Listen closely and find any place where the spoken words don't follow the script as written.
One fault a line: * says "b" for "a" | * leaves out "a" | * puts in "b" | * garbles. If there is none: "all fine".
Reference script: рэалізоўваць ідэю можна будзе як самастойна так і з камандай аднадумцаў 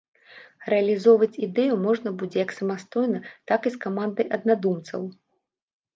all fine